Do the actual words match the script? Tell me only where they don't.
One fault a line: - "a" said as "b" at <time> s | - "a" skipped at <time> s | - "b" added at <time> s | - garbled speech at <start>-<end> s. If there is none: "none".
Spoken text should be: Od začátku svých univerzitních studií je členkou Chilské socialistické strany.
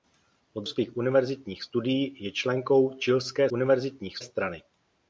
- "začátku" skipped at 0.7 s
- "socialistické" said as "univerzitních" at 3.5 s